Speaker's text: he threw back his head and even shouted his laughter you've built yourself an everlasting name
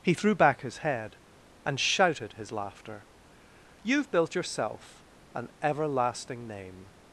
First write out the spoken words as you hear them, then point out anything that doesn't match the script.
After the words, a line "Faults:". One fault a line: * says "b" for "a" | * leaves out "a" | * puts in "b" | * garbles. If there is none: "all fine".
he threw back his head and shouted his laughter you've built yourself an everlasting name
Faults:
* leaves out "even"